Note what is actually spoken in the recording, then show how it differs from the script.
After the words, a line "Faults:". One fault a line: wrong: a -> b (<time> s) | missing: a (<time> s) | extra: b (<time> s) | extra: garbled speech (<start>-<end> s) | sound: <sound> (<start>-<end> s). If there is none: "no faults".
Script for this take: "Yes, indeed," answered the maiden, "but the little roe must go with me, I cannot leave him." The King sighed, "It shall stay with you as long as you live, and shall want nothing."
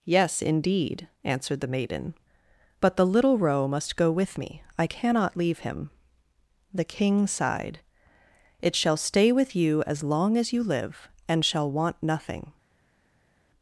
"Yes, indeed," answered the maiden, "but the little roe must go with me, I cannot leave him." The King sighed, "It shall stay with you as long as you live, and shall want nothing."
Faults:
no faults